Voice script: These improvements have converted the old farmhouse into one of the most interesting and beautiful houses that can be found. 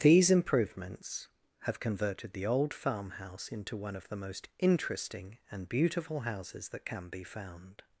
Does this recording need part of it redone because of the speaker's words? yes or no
no